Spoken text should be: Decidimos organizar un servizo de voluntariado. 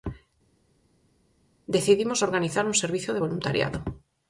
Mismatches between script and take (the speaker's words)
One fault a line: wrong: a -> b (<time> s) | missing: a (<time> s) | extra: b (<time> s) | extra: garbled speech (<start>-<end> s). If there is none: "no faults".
no faults